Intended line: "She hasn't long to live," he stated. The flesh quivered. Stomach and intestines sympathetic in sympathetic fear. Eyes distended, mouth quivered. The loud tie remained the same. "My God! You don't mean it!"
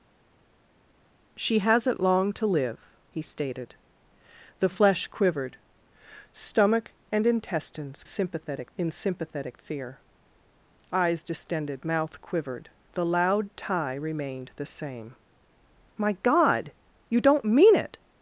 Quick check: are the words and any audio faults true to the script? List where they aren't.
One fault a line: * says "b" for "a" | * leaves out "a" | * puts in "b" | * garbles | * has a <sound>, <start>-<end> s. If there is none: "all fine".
all fine